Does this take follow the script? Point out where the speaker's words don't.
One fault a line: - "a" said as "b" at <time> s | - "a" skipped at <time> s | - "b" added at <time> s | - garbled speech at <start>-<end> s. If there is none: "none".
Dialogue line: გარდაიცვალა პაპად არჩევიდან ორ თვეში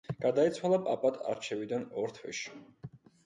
none